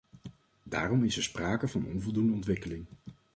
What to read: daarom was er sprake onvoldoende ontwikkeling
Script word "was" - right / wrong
wrong